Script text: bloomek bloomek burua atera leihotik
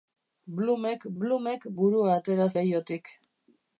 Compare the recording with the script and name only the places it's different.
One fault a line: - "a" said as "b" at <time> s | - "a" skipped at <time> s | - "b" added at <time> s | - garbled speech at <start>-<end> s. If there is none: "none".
none